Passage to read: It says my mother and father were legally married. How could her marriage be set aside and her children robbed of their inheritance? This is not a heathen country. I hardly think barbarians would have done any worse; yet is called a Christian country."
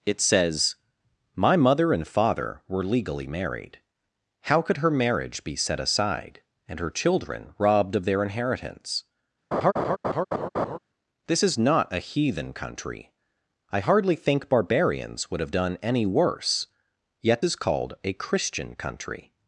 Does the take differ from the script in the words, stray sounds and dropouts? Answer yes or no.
yes